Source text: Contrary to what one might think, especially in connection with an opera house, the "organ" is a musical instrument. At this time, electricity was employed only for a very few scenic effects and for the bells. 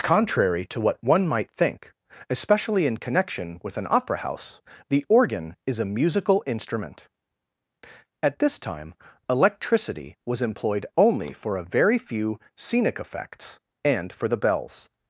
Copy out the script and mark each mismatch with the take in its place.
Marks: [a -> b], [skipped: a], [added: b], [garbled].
Contrary to what one might think, especially in connection with an opera house, the "organ" is a musical instrument. At this time, electricity was employed only for a very few scenic effects and for the bells.